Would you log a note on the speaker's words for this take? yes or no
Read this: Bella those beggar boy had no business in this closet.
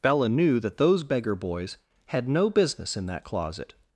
yes